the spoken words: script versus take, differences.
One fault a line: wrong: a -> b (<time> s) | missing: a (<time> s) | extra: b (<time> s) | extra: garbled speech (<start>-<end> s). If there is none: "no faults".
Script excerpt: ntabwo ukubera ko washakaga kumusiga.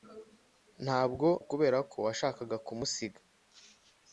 no faults